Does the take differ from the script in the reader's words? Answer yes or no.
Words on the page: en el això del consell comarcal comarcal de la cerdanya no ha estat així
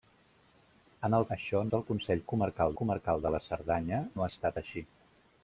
no